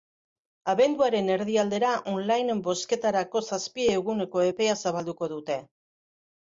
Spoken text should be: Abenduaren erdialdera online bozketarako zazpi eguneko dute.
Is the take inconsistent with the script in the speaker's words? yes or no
yes